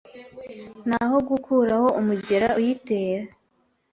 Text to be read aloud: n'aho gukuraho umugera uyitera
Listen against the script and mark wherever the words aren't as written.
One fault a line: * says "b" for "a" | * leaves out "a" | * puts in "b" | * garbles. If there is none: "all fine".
all fine